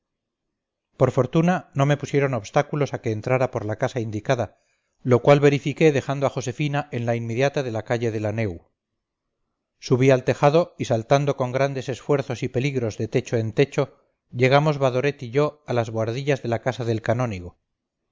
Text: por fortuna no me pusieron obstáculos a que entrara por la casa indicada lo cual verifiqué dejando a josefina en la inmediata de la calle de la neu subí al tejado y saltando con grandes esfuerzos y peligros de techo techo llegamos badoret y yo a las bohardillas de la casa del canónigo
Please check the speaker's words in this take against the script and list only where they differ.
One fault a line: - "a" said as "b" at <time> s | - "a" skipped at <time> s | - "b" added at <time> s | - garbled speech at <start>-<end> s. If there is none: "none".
- "en" added at 13.4 s